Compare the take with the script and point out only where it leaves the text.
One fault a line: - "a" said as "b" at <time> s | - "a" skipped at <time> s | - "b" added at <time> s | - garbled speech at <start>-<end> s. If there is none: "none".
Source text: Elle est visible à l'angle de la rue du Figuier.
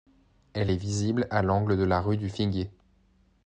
none